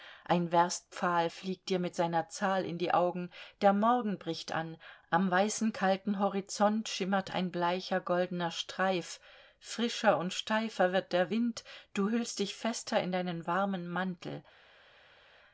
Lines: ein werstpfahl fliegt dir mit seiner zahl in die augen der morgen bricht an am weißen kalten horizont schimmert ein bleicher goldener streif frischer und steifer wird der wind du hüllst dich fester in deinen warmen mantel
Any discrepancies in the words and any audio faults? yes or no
no